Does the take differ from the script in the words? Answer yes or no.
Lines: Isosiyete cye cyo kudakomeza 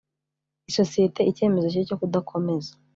yes